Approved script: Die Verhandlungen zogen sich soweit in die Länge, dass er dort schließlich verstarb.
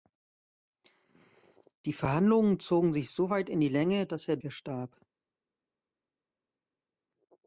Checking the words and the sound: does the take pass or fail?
fail